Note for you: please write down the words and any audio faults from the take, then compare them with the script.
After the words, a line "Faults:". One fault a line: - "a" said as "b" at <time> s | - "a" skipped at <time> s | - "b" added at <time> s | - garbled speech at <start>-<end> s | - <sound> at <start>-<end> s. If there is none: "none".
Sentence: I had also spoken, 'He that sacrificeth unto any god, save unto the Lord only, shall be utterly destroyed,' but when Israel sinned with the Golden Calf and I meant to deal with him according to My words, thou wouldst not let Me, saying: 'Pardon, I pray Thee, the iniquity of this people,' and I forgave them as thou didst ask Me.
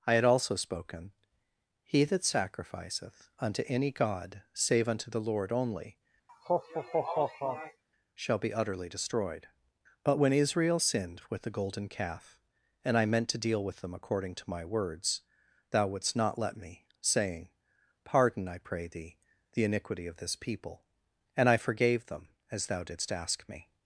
I had also spoken, 'He that sacrificeth unto any god, save unto the Lord only, shall be utterly destroyed,' but when Israel sinned with the Golden Calf and I meant to deal with them according to My words, thou wouldst not let Me, saying: 'Pardon, I pray Thee, the iniquity of this people,' and I forgave them as thou didst ask Me.
Faults:
- laugh at 6.3-7.8 s
- "him" said as "them" at 13.8 s